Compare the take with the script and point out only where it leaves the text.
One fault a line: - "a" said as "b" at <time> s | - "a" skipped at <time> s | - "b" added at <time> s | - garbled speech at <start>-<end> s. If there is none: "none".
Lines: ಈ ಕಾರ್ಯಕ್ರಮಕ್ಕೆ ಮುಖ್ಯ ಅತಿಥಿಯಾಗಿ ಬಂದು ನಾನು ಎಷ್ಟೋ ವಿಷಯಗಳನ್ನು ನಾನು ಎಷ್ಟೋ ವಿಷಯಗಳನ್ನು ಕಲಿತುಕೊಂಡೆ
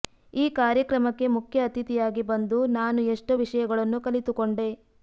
- "ನಾನು ಎಷ್ಟೋ ವಿಷಯಗಳನ್ನು" skipped at 4.0 s